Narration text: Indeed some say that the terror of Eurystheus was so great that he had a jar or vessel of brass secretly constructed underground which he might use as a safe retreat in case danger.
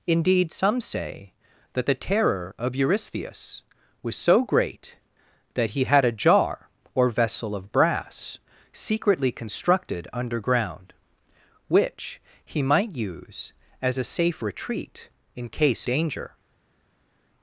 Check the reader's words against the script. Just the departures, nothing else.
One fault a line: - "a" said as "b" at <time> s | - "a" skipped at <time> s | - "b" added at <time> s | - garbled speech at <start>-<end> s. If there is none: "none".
none